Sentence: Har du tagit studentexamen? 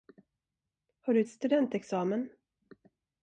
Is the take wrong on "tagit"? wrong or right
wrong